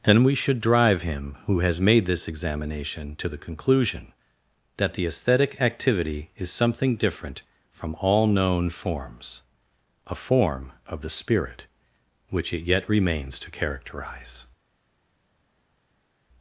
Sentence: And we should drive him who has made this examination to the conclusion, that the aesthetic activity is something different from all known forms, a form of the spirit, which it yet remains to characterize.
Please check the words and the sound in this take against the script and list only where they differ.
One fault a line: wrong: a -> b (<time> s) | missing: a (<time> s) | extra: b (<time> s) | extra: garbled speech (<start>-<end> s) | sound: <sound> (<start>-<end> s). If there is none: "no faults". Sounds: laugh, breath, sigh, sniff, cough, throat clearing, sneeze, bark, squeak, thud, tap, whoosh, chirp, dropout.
no faults